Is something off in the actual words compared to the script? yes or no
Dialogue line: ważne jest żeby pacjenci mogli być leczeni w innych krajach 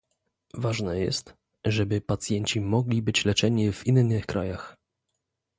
no